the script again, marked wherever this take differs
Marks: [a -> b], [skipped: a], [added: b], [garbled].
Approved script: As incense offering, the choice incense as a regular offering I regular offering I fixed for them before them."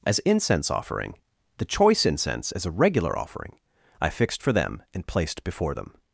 As incense offering, the choice incense as a regular offering I [skipped: regular offering I] fixed for them [added: and placed] before them."